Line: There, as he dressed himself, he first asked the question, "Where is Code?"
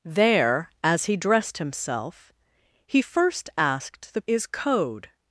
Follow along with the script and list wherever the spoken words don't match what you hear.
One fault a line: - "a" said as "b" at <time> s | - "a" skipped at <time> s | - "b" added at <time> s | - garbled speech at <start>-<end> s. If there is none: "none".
- "question Where" skipped at 4.2 s